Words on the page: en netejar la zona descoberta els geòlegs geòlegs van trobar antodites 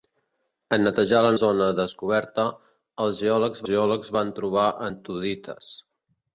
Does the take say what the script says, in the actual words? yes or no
yes